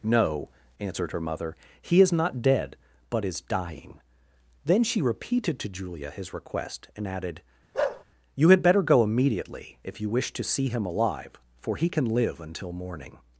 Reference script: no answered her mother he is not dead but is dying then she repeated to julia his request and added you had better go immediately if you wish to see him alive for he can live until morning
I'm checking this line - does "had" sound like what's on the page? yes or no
yes